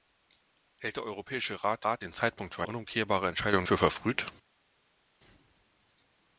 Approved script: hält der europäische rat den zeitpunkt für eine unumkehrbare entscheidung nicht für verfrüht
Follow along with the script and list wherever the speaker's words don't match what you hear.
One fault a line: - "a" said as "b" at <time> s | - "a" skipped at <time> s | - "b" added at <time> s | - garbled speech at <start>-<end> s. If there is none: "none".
- "rat" added at 1.8 s
- "eine" skipped at 2.6 s
- "nicht" skipped at 3.6 s